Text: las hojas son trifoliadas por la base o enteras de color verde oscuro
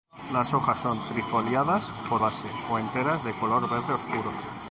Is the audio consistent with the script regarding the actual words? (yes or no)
no